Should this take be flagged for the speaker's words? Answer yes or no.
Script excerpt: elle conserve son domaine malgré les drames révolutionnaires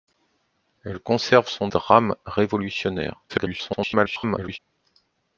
yes